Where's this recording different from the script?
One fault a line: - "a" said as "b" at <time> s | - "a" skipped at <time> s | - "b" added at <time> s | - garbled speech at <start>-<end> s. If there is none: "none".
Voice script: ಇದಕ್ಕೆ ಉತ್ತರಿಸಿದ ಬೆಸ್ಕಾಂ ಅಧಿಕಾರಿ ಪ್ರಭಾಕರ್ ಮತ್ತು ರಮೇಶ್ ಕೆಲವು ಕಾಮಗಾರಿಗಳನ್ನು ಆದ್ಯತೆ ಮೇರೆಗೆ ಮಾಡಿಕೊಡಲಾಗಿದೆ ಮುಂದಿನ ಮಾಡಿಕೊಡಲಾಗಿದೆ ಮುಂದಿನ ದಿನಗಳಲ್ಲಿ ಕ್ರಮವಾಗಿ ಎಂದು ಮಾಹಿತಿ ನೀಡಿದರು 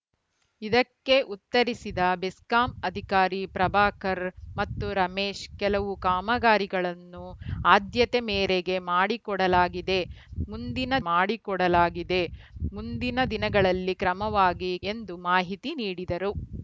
none